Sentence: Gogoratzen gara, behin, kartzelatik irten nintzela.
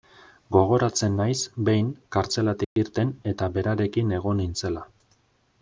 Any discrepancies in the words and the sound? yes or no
yes